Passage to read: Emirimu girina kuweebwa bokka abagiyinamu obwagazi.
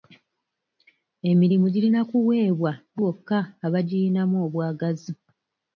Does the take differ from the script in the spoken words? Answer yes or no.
no